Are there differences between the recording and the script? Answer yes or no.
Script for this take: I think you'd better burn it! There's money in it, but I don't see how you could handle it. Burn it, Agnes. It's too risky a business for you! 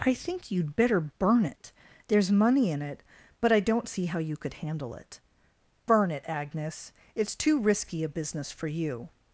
no